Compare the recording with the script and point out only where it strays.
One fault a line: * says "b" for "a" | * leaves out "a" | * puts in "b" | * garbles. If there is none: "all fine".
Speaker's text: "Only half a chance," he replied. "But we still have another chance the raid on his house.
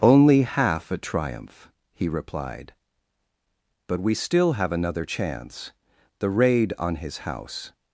* says "triumph" for "chance"